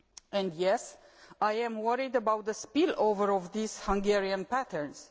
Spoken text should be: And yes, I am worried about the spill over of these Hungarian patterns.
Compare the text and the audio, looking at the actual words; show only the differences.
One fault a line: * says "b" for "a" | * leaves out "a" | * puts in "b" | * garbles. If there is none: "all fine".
all fine